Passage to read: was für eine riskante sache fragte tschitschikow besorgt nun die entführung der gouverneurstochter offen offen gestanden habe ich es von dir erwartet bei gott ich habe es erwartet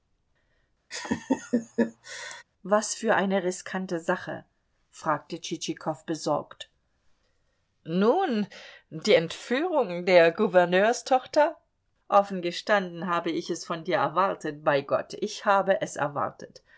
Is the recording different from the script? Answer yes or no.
yes